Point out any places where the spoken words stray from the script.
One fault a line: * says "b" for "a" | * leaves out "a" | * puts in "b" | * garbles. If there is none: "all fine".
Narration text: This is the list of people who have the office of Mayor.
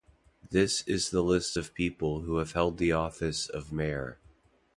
* puts in "held"